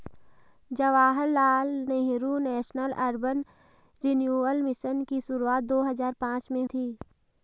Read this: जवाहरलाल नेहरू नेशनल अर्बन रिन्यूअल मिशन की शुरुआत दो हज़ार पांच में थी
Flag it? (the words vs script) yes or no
no